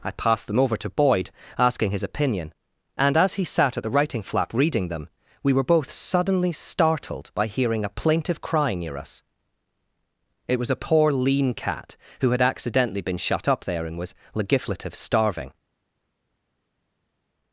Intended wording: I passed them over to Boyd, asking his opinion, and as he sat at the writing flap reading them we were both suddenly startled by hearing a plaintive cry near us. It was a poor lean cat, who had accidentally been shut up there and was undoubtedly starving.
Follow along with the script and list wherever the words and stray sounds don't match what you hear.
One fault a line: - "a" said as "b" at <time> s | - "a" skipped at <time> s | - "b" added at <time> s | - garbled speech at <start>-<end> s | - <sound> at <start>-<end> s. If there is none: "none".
- "undoubtedly" said as "legiflative" at 14.3 s